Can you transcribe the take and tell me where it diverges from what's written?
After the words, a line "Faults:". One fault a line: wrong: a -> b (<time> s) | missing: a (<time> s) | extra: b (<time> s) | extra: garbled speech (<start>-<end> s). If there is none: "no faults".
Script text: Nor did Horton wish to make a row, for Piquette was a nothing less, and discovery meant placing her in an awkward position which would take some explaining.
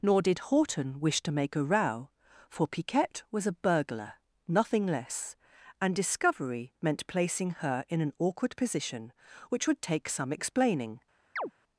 Nor did Horton wish to make a row, for Piquette was a burglar, nothing less, and discovery meant placing her in an awkward position which would take some explaining.
Faults:
extra: burglar (3.5 s)